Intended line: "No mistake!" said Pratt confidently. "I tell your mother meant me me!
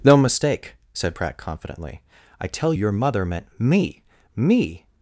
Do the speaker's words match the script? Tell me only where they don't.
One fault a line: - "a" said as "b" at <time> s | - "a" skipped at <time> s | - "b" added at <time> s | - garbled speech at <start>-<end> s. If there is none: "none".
none